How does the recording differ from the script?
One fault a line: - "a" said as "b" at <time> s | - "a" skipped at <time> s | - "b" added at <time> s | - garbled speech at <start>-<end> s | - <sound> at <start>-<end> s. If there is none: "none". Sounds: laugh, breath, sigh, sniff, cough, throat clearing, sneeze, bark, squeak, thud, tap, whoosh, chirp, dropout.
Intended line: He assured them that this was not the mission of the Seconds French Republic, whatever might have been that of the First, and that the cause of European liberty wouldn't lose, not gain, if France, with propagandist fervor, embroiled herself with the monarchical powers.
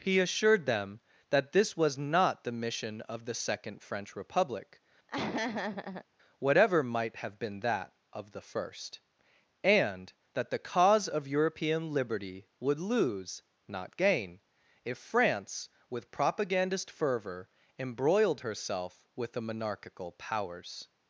- "Seconds" said as "Second" at 3.4 s
- laugh at 5.1-6.1 s
- "wouldn't" said as "would" at 12.6 s